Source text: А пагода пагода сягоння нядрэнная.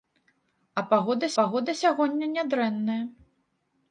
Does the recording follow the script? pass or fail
pass